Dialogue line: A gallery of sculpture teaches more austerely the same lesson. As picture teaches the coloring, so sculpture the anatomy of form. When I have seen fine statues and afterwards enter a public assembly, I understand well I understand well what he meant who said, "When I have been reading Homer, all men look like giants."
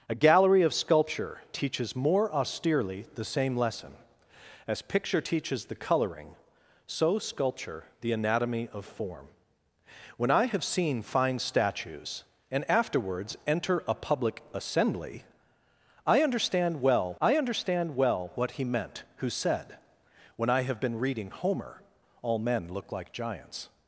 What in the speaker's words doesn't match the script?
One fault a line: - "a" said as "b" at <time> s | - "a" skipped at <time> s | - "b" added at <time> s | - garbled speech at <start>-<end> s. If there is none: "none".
none